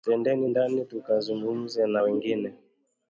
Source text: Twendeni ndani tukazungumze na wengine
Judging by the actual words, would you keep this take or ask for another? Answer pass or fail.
pass